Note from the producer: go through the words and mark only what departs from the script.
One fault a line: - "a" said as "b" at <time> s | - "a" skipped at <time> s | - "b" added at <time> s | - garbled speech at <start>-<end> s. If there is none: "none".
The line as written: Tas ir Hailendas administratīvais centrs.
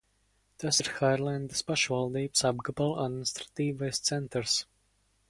- "pašvaldības apgabala" added at 1.7 s